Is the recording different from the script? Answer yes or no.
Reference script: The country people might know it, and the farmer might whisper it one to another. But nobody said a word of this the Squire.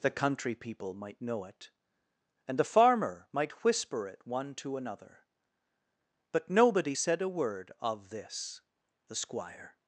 no